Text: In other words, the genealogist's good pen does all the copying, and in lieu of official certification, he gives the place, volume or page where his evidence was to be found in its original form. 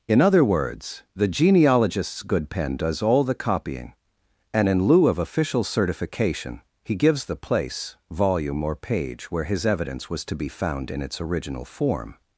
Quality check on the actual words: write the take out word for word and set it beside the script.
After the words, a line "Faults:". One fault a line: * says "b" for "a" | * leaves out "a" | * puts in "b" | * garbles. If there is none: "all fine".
In other words, the genealogist's good pen does all the copying, and in lieu of official certification, he gives the place, volume or page where his evidence was to be found in its original form.
Faults:
all fine